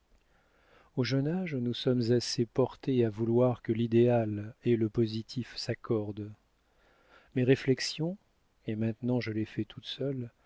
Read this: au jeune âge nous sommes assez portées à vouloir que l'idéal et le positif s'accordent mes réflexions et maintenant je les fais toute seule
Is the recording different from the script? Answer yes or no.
no